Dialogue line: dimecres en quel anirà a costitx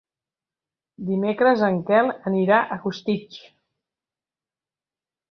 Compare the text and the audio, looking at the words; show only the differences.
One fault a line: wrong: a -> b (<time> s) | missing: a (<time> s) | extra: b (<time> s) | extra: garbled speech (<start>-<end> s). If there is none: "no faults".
no faults